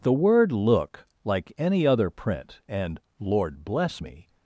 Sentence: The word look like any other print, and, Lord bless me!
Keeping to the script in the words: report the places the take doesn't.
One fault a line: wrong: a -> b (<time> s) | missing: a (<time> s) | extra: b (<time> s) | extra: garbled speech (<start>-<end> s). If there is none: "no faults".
no faults